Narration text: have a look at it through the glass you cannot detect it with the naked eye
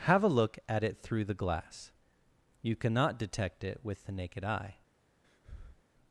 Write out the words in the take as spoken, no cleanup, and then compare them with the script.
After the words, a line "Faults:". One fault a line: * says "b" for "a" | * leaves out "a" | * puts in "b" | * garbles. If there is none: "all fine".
have a look at it through the glass you cannot detect it with the naked eye
Faults:
all fine